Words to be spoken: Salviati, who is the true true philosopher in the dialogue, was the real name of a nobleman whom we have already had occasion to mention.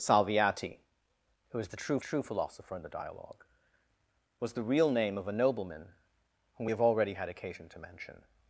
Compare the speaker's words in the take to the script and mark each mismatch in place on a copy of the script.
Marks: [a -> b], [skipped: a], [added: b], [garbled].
Salviati, who is the true true philosopher in the dialogue, was the real name of a nobleman whom we have already had occasion to mention.